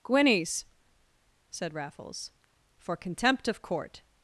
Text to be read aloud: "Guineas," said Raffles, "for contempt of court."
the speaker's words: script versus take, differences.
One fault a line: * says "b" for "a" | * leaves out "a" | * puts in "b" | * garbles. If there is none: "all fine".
all fine